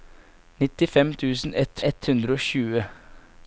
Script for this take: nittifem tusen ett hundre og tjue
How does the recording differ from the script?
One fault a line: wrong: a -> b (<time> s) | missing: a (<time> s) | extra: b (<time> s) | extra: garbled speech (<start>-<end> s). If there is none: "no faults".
extra: ett (1.9 s)